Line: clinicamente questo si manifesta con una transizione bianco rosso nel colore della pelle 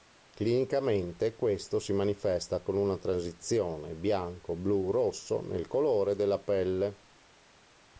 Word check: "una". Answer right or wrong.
right